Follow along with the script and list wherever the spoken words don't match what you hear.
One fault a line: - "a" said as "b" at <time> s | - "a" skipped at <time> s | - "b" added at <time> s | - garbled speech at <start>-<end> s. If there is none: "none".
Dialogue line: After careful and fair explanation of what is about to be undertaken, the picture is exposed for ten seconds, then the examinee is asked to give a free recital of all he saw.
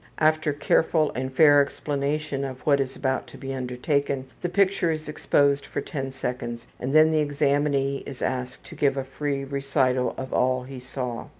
- "and" added at 6.8 s